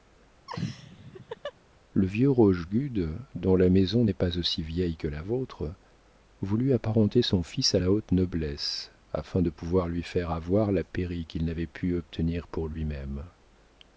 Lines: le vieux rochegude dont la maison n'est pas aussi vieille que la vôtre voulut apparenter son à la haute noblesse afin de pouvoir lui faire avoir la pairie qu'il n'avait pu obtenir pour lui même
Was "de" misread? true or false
false